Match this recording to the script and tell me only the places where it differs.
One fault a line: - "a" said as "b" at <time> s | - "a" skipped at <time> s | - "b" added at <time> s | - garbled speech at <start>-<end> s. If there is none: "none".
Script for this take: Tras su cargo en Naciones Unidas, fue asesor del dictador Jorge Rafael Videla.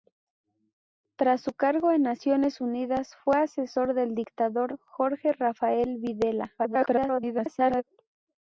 - garbled speech at 6.6-7.8 s